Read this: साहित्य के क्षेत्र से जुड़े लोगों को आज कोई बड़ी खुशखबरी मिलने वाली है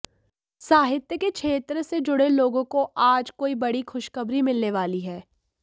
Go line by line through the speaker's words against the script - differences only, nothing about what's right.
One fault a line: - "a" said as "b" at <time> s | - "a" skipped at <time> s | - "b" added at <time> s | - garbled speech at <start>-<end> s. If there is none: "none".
none